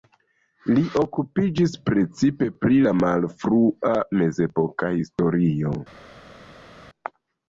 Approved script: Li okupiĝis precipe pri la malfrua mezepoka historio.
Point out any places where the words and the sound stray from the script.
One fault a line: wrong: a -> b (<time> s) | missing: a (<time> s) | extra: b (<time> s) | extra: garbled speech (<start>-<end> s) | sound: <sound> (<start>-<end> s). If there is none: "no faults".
no faults